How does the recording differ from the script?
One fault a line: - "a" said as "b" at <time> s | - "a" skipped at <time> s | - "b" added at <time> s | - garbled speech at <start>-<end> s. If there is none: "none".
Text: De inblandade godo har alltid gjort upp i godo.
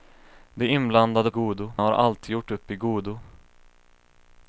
none